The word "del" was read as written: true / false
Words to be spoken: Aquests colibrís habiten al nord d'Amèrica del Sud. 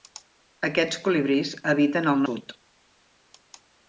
false